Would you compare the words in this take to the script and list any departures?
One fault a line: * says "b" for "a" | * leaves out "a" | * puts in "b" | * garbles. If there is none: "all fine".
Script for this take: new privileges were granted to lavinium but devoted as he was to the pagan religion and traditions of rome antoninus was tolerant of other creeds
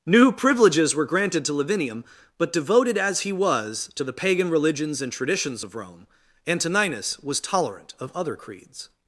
* says "religions" for "religion"